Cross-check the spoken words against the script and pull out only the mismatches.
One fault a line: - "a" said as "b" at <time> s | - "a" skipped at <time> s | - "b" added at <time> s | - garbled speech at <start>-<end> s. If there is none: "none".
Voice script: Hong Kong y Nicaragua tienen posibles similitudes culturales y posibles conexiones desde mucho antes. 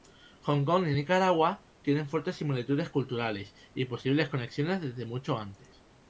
- "posibles" said as "fuertes" at 2.1 s